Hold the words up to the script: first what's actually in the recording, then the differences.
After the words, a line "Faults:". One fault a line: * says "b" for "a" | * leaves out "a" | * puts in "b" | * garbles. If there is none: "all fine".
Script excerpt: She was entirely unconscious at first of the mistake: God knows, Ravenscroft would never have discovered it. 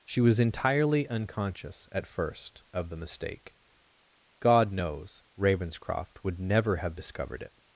She was entirely unconscious at first of the mistake: God knows, Ravenscroft would never have discovered it.
Faults:
all fine